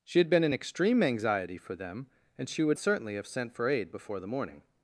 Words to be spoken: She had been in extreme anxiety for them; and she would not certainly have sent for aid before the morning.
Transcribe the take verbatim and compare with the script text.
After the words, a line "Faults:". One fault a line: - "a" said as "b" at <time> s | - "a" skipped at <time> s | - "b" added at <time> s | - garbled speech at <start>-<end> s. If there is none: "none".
She had been in extreme anxiety for them; and she would certainly have sent for aid before the morning.
Faults:
- "not" skipped at 2.8 s